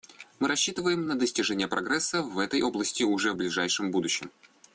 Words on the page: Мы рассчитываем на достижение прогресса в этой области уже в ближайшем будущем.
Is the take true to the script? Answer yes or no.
yes